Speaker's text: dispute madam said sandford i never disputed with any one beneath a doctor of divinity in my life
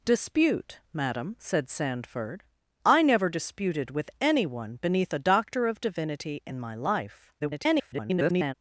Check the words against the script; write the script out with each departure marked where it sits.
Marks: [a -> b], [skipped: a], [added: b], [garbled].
dispute madam said sandford i never disputed with any one beneath a doctor of divinity in my life [garbled]